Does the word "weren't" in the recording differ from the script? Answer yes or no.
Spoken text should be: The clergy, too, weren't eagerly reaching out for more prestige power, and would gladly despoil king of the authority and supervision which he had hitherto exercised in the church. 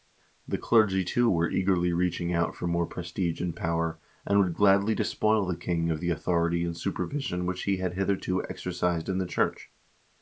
yes